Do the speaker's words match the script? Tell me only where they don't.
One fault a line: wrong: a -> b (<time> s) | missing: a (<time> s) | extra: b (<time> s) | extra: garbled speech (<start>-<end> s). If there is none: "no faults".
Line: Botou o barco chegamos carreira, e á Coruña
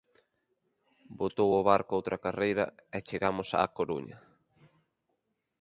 wrong: chegamos -> outra (2.0 s)
extra: chegamos (3.1 s)